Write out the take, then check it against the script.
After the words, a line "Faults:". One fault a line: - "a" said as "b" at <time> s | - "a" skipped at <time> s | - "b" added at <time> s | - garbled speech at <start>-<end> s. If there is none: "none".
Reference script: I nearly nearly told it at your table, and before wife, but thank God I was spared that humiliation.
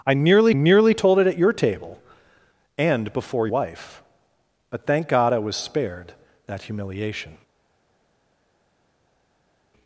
I nearly nearly told it at your table, and before wife, but thank God I was spared that humiliation.
Faults:
none